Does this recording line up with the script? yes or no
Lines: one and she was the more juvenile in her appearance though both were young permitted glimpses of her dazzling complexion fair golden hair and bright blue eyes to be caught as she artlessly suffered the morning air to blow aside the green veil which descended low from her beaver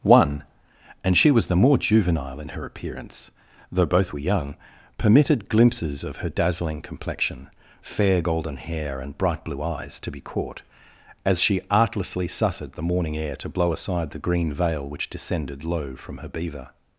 yes